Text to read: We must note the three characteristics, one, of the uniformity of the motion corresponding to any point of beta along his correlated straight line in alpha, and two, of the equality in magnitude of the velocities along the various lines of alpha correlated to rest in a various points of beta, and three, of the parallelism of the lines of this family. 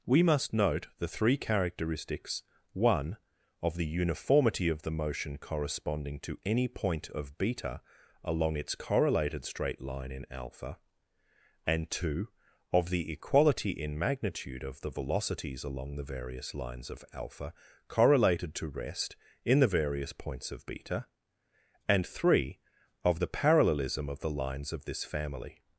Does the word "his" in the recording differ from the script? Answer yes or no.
yes